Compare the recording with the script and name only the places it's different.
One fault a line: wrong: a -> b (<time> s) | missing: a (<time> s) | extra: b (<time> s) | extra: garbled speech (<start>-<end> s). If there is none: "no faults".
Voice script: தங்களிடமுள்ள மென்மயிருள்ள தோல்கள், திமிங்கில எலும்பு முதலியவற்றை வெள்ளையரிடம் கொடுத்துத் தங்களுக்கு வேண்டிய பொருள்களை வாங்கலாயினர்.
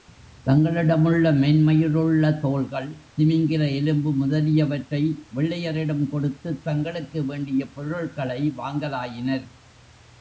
no faults